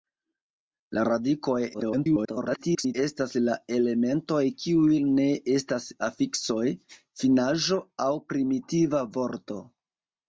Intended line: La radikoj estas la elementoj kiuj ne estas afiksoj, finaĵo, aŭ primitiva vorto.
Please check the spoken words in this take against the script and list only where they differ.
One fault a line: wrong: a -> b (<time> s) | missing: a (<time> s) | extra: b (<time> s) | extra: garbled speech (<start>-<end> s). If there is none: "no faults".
extra: garbled speech (1.7-3.0 s)